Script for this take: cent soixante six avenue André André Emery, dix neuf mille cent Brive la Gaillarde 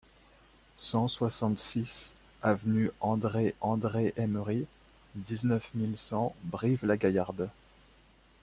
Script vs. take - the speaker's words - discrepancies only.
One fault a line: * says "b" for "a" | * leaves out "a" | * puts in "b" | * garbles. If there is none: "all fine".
all fine